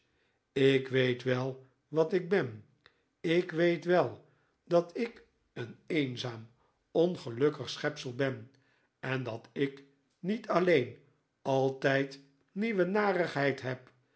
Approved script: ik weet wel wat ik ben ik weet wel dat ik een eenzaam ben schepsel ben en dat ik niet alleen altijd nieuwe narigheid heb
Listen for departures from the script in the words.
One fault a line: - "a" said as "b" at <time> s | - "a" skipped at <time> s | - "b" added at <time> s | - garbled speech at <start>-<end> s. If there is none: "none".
- "ben" said as "ongelukkig" at 6.9 s